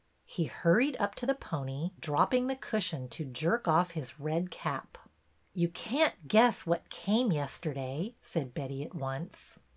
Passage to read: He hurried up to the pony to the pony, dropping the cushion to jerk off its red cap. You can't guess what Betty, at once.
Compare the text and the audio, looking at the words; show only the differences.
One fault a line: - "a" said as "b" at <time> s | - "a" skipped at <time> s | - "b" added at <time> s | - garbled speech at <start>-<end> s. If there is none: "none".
- "to the pony" skipped at 1.9 s
- "its" said as "his" at 3.9 s
- "came yesterday said" added at 6.9 s